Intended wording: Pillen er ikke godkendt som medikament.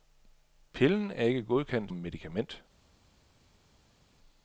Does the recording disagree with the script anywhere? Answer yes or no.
yes